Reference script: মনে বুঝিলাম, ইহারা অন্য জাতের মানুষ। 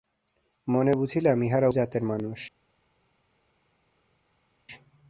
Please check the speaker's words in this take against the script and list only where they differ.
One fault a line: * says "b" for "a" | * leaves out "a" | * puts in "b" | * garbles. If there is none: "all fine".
* leaves out "অন্য"